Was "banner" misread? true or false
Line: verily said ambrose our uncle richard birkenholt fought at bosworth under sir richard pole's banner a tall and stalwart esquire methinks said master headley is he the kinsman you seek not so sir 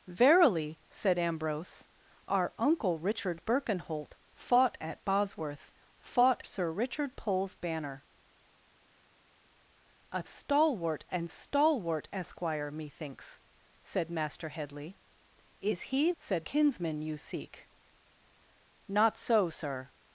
false